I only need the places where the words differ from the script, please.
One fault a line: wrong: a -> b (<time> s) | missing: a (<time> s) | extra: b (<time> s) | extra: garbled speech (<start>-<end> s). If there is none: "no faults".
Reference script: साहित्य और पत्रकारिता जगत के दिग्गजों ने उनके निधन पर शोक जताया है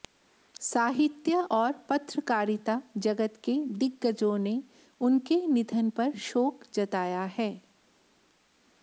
no faults